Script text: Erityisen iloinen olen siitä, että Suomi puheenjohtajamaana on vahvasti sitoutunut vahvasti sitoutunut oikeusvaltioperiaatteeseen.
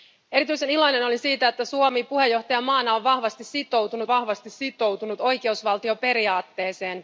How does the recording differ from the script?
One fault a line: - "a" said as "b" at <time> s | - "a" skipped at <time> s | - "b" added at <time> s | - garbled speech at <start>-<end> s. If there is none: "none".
none